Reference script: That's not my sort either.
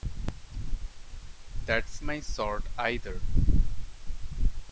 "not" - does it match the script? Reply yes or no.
no